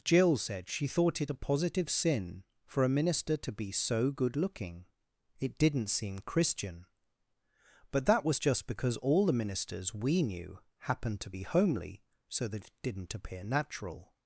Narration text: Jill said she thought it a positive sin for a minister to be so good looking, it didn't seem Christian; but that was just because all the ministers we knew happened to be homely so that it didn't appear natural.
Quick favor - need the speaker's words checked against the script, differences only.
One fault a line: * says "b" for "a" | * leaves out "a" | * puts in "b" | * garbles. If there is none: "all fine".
all fine